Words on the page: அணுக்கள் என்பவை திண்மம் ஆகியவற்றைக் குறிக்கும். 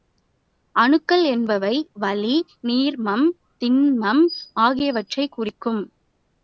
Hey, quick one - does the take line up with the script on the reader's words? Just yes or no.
no